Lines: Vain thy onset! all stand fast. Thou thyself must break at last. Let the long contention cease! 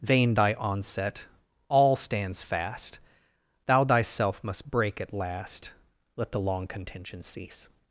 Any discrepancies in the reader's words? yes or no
yes